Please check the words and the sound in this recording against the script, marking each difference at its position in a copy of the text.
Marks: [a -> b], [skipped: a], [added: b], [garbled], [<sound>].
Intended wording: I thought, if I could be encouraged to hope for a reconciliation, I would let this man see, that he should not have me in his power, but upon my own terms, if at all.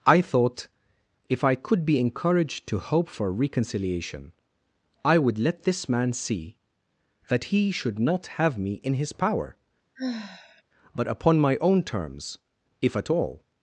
I thought, if I could be encouraged to hope for [skipped: a] reconciliation, I would let this man see, that he should not have me in his power, [sigh] but upon my own terms, if at all.